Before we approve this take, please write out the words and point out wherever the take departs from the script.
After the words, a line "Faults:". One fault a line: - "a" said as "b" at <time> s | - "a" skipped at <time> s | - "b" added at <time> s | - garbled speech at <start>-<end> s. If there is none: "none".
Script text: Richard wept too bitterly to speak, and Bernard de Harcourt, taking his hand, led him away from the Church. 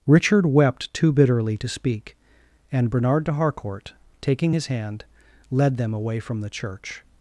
Richard wept too bitterly to speak, and Bernard de Harcourt, taking his hand, led them away from the Church.
Faults:
- "him" said as "them" at 5.8 s